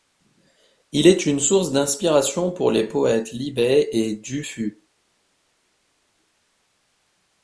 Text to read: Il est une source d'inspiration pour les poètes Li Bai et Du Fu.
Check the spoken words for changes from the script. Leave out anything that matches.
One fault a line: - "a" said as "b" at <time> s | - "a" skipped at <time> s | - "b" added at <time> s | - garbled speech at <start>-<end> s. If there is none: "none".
none